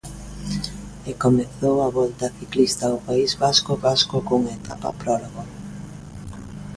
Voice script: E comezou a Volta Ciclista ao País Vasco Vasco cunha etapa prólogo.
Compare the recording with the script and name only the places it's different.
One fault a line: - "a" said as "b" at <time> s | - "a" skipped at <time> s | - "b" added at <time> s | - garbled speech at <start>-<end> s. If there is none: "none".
none